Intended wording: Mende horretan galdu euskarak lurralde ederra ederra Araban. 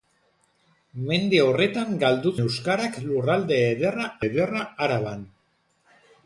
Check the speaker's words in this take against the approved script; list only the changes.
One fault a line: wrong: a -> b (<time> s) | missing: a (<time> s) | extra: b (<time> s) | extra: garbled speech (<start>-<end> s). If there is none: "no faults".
no faults